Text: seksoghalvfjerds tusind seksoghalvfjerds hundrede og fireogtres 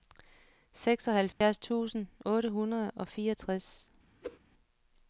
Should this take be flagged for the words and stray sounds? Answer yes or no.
yes